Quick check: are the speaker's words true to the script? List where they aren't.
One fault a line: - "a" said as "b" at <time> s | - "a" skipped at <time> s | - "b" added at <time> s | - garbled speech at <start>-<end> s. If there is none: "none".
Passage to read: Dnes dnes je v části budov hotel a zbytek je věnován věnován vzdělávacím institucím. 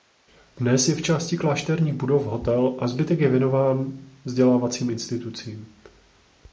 - "dnes" skipped at 0.9 s
- "klášterních" added at 1.4 s
- "věnován" skipped at 4.0 s